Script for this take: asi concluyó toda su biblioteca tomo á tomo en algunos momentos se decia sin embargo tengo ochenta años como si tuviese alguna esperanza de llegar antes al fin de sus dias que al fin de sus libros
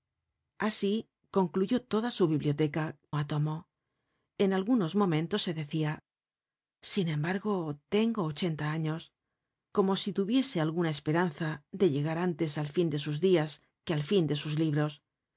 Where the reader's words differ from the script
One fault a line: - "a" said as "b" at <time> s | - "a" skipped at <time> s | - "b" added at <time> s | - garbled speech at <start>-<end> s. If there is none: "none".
- "tomo" skipped at 2.9 s